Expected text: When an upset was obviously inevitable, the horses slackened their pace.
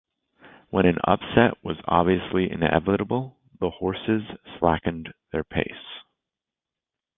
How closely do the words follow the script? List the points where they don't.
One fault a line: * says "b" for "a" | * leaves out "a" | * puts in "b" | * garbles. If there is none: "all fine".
all fine